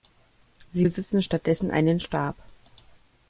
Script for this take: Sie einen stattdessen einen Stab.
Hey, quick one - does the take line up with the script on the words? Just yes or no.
no